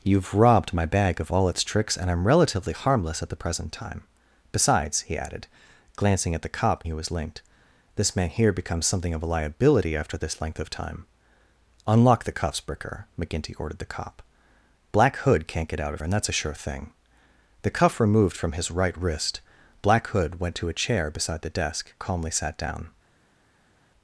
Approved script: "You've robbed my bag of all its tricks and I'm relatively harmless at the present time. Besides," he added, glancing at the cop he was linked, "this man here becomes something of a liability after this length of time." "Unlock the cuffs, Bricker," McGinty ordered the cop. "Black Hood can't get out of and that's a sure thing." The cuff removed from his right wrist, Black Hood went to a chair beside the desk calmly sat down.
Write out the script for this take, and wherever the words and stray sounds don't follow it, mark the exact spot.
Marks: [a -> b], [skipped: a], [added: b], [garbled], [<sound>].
"You've robbed my bag of all its tricks and I'm relatively harmless at the present time. Besides," he added, glancing at the cop he was linked, "this man here becomes something of a liability after this length of time." "Unlock the cuffs, Bricker," McGinty ordered the cop. "Black Hood can't get out of and that's a sure thing." The cuff removed from his right wrist, Black Hood went to a chair beside the desk calmly sat down.